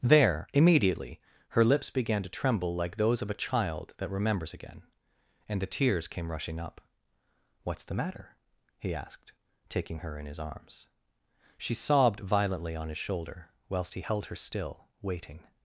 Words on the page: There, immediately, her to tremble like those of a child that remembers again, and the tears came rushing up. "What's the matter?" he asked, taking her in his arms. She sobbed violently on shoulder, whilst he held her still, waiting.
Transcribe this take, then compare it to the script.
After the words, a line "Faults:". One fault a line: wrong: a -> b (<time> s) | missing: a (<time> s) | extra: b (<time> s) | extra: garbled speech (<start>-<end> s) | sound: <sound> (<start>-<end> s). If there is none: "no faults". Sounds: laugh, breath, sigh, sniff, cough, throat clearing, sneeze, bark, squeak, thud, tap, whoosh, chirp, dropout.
There, immediately, her lips began to tremble like those of a child that remembers again, and the tears came rushing up. "What's the matter?" he asked, taking her in his arms. She sobbed violently on his shoulder, whilst he held her still, waiting.
Faults:
extra: lips began (1.6 s)
extra: his (12.9 s)